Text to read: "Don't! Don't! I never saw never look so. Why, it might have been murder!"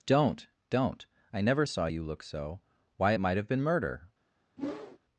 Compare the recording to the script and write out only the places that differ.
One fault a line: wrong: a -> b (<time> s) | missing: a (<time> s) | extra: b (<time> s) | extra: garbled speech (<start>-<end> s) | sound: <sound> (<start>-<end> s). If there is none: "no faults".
wrong: never -> you (1.9 s)
sound: whoosh (4.6-5.0 s)